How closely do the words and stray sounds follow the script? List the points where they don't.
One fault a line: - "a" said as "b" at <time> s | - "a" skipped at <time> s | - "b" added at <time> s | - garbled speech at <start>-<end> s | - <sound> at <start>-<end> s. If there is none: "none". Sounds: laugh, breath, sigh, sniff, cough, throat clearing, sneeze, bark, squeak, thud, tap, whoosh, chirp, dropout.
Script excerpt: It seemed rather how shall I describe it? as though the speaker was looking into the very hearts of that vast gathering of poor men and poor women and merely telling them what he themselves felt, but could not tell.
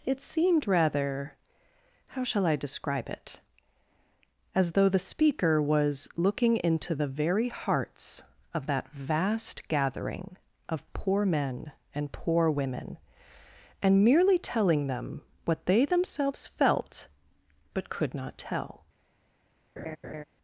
- "he" said as "they" at 15.7 s
- laugh at 19.8-20.2 s